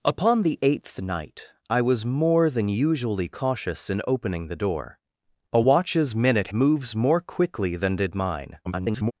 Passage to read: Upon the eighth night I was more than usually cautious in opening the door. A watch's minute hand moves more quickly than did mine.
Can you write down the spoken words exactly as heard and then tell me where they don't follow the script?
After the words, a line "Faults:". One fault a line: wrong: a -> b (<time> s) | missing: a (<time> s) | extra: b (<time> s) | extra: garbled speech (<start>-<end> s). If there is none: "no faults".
Upon the eighth night I was more than usually cautious in opening the door. A watch's minute moves more quickly than did mine. [garbled]
Faults:
missing: hand (6.5 s)
extra: garbled speech (8.6-9.1 s)